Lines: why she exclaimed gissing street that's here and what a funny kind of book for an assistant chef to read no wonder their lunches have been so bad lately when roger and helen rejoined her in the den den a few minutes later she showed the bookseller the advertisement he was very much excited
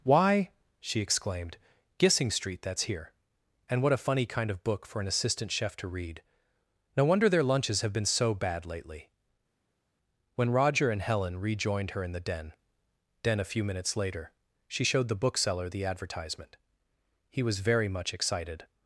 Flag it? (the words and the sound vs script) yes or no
no